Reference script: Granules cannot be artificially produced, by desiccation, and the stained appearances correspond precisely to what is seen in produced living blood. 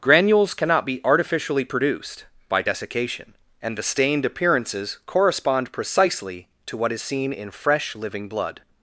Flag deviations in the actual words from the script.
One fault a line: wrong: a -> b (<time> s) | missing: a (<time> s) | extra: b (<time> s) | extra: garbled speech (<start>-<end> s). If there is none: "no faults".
wrong: produced -> fresh (7.5 s)